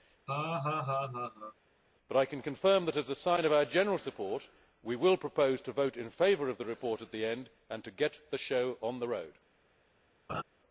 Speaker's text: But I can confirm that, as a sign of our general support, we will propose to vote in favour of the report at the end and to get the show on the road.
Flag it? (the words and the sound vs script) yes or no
yes